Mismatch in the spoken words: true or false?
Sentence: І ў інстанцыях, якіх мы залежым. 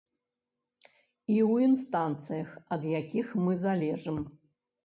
true